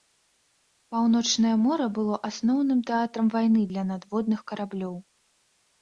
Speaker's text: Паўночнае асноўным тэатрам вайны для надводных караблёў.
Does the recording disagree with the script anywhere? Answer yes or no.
yes